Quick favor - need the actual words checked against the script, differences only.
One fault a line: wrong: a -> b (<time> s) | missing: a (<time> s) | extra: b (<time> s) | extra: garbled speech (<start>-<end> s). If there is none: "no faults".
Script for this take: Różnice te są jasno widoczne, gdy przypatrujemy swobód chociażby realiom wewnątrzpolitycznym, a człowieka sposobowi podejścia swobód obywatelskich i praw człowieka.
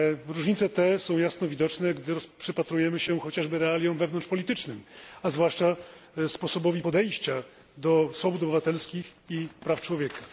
wrong: swobód -> się (3.0 s)
wrong: człowieka -> zwłaszcza (5.3 s)
extra: do (7.8 s)